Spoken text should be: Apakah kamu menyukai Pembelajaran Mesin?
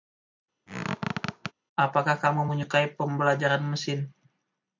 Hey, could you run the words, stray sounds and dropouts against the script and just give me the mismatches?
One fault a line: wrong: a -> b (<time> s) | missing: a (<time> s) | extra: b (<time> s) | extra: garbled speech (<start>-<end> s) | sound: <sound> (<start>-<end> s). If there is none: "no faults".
sound: squeak (0.7-1.5 s)